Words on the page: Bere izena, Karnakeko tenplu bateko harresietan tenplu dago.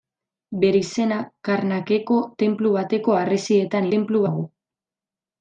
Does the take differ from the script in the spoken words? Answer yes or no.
no